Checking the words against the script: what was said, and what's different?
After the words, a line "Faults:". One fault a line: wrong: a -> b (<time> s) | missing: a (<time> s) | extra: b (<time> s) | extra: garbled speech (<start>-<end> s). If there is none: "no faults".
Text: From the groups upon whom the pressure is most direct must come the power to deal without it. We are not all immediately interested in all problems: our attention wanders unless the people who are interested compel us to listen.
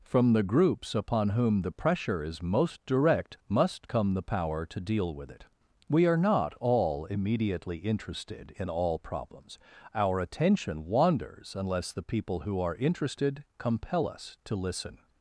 From the groups upon whom the pressure is most direct must come the power to deal with it. We are not all immediately interested in all problems: our attention wanders unless the people who are interested compel us to listen.
Faults:
wrong: without -> with (5.1 s)